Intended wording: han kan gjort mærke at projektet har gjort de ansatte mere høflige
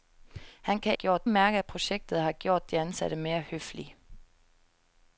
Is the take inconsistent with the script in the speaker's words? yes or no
no